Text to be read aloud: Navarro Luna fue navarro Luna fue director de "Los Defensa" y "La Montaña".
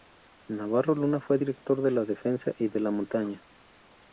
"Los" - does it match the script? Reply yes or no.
no